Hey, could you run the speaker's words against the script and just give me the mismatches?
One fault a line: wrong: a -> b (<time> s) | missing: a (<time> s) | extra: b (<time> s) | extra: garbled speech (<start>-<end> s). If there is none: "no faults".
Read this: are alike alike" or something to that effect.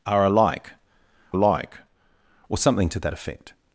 no faults